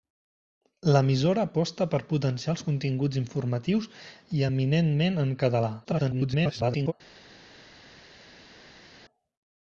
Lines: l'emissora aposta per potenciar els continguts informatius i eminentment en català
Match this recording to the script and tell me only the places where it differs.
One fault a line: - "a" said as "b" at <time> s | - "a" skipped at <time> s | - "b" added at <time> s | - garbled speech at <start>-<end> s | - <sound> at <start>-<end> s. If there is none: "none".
- garbled speech at 5.8-6.9 s